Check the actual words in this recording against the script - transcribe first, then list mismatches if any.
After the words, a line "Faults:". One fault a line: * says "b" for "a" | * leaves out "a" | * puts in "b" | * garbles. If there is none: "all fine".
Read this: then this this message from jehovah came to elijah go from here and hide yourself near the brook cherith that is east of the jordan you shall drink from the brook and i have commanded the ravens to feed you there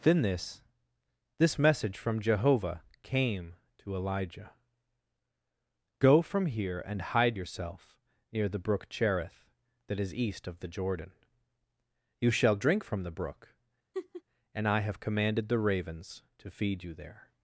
then this this message from jehovah came to elijah go from here and hide yourself near the brook cherith that is east of the jordan you shall drink from the brook and i have commanded the ravens to feed you there
Faults:
all fine